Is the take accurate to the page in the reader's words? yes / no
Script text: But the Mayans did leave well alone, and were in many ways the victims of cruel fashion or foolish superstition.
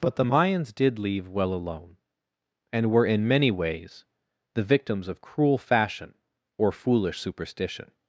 yes